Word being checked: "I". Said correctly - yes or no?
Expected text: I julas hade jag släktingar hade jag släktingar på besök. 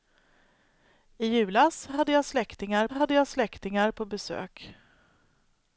yes